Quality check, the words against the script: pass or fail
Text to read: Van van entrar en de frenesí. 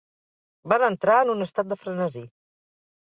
fail